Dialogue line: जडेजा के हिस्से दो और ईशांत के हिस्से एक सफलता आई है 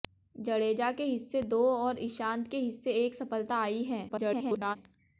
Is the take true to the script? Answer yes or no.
no